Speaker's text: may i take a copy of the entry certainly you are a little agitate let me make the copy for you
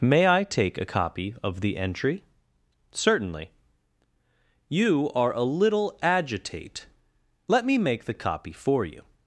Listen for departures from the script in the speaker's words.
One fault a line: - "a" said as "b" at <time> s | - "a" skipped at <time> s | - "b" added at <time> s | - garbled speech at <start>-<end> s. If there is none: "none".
none